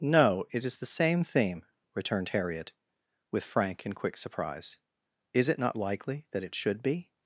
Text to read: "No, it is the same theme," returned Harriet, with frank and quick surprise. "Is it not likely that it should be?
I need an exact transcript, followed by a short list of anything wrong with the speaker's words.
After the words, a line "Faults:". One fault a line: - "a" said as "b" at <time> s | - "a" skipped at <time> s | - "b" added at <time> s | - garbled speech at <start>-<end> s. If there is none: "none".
"No, it is the same theme," returned Harriet, with frank and quick surprise. "Is it not likely that it should be?
Faults:
none